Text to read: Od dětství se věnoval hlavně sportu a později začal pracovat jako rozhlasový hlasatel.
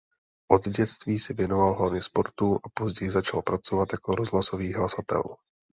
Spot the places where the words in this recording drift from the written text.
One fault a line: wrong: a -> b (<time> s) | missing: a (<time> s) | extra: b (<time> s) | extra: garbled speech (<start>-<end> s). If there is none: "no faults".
no faults